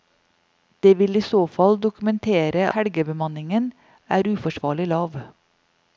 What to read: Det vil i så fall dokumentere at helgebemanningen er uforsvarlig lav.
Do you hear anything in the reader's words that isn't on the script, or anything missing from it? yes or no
yes